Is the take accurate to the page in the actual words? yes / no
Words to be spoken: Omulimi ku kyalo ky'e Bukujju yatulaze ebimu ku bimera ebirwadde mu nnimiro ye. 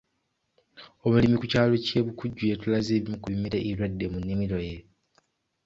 yes